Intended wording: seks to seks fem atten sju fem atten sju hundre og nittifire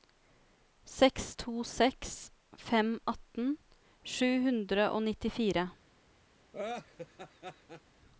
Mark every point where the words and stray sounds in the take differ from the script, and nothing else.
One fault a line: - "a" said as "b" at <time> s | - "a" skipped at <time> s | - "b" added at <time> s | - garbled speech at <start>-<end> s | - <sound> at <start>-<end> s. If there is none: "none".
- "fem atten sju" skipped at 4.3 s
- laugh at 6.5-7.8 s